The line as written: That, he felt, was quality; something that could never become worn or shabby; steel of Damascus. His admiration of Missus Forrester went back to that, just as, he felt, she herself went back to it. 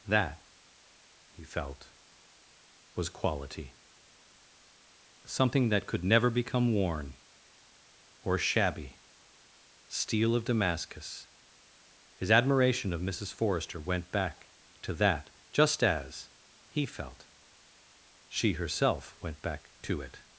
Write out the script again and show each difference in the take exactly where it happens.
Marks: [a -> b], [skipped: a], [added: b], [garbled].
That, he felt, was quality; something that could never become worn or shabby; steel of Damascus. His admiration of Missus Forrester went back to that, just as, he felt, she herself went back to it.